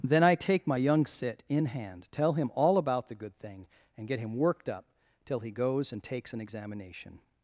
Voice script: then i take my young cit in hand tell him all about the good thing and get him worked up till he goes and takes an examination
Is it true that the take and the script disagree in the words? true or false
false